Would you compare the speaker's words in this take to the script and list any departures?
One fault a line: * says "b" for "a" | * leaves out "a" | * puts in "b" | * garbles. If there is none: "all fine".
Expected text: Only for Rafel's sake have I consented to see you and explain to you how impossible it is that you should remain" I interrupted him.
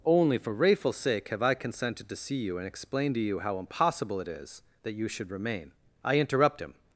* says "interrupt" for "interrupted"